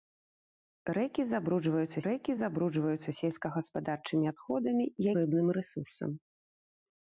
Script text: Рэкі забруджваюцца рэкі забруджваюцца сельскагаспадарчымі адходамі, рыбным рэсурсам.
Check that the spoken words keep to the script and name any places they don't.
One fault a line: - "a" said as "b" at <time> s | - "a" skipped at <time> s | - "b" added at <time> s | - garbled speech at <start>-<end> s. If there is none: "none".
none